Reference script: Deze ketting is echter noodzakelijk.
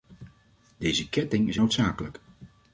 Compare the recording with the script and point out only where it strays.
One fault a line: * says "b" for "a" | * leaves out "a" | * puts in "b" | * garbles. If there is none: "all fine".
* leaves out "echter"